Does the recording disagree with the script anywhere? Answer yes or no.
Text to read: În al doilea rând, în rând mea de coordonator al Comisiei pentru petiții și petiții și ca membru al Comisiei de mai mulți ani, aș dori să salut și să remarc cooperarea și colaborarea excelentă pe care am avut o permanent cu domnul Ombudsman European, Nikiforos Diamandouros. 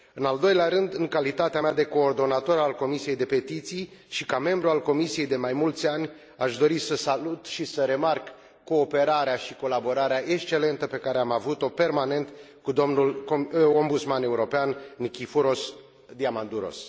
yes